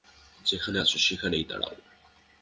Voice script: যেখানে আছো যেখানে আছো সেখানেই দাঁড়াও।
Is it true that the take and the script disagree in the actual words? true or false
true